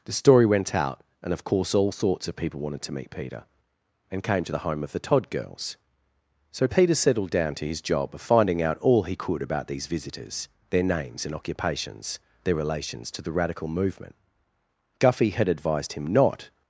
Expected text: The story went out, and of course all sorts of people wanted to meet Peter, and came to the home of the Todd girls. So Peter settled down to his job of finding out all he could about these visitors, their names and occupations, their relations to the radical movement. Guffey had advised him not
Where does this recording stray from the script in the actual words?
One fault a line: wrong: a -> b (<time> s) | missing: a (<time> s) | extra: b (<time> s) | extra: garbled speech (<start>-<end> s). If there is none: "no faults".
no faults